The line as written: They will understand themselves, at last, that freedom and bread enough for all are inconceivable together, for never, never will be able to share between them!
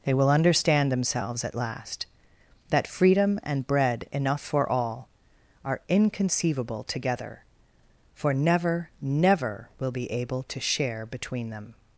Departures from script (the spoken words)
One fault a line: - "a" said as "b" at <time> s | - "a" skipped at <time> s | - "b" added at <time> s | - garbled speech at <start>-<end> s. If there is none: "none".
none